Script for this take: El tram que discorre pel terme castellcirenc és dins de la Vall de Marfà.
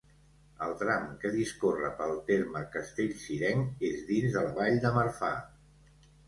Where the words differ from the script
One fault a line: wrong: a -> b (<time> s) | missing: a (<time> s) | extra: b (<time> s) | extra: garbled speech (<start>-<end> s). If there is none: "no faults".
no faults